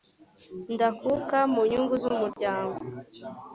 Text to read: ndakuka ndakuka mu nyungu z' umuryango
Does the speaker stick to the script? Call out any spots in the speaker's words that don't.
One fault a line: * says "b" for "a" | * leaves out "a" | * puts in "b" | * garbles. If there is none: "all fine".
* leaves out "ndakuka"